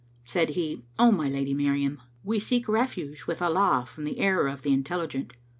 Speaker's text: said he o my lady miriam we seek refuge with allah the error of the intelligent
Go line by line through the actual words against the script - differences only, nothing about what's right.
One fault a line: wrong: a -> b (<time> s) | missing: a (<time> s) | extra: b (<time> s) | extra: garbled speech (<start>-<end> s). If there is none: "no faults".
extra: from (3.8 s)